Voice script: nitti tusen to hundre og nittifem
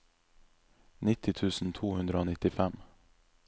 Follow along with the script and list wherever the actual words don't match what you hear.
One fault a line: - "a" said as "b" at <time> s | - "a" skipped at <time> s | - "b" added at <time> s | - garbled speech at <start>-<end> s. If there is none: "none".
none